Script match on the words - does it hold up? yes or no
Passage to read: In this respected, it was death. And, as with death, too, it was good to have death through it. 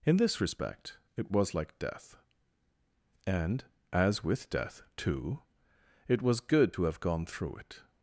no